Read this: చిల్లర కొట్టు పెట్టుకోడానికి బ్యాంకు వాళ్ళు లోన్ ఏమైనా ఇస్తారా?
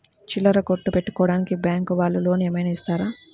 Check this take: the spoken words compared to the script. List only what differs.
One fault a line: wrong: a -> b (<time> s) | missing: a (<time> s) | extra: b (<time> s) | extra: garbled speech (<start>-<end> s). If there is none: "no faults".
no faults